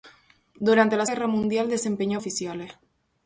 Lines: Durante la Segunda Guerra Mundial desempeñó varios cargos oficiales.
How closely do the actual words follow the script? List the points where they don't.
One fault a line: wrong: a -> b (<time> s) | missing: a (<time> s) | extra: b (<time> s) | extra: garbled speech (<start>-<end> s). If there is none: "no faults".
missing: Segunda (1.1 s)
missing: varios cargos (2.2 s)